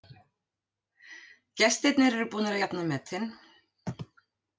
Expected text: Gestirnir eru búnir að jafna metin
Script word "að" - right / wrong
right